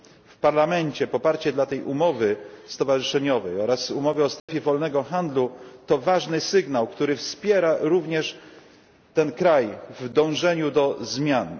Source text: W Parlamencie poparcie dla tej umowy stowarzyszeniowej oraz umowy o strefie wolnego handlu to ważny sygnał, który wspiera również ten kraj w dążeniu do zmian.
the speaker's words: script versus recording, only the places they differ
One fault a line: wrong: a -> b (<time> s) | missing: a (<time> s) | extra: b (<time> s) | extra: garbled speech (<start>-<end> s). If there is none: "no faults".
no faults